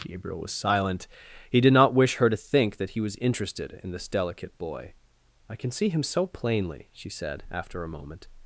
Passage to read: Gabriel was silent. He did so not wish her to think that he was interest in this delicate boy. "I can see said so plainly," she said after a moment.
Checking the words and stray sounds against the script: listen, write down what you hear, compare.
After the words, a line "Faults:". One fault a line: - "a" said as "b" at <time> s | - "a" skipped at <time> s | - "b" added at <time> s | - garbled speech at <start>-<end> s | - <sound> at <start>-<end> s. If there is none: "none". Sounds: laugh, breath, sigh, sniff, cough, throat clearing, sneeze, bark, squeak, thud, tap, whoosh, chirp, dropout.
Gabriel was silent. He did not wish her to think that he was interested in this delicate boy. "I can see him so plainly," she said after a moment.
Faults:
- "so" skipped at 1.7 s
- "interest" said as "interested" at 3.2 s
- "said" said as "him" at 5.9 s